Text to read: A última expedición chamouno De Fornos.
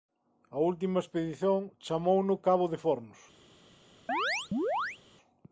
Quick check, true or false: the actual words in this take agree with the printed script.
false